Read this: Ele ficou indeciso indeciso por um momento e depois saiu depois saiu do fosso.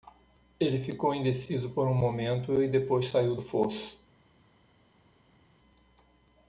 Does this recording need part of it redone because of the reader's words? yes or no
yes